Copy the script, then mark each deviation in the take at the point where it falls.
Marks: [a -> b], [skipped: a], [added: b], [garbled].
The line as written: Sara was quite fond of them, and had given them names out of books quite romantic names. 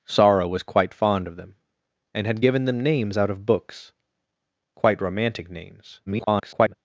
Sara was quite fond of them, and had given them names out of books quite romantic names. [garbled]